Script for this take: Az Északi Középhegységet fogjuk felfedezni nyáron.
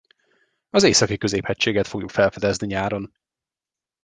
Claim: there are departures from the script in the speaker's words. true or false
false